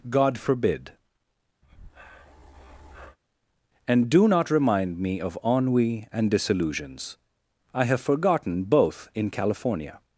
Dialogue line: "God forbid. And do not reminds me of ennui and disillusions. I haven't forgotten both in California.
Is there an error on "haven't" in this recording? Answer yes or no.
yes